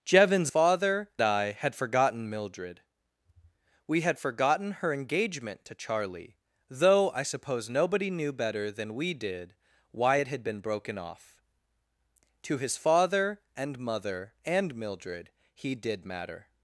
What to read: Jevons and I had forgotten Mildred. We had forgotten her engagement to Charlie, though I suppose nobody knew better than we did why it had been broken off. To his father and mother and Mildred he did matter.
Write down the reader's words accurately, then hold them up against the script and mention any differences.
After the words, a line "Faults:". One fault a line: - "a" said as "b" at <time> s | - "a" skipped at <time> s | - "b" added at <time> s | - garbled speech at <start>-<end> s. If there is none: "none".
Jevons father I had forgotten Mildred. We had forgotten her engagement to Charlie, though I suppose nobody knew better than we did why it had been broken off. To his father and mother and Mildred he did matter.
Faults:
- "and" said as "father" at 0.5 s